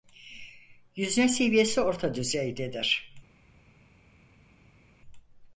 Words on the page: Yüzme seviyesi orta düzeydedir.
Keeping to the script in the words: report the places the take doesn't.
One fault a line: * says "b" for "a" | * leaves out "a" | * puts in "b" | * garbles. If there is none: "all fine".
all fine